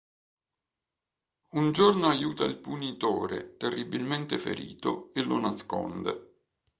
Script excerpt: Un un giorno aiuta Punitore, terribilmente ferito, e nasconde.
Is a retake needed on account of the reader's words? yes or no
yes